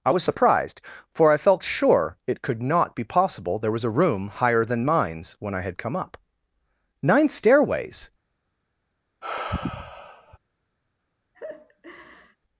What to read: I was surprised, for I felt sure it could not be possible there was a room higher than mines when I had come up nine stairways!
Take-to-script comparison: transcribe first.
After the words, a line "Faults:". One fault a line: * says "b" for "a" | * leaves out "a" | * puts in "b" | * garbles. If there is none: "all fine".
I was surprised, for I felt sure it could not be possible there was a room higher than mines when I had come up nine stairways!
Faults:
all fine